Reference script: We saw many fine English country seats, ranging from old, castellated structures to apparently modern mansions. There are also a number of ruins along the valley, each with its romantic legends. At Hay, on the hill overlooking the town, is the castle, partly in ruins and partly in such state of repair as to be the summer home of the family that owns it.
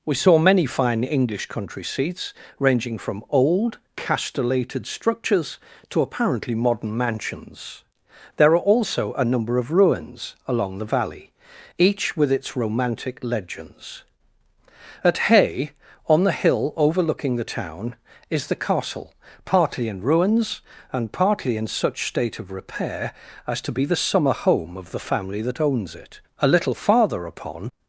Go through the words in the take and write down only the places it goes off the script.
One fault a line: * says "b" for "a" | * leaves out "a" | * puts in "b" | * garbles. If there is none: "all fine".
* puts in "A little farther upon"